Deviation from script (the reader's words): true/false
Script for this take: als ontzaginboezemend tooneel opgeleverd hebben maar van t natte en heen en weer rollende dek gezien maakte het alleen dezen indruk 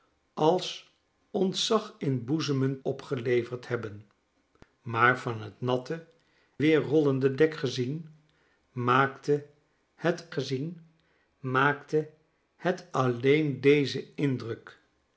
true